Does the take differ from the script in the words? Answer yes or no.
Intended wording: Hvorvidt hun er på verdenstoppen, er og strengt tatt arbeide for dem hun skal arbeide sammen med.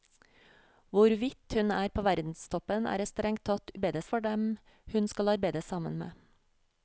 no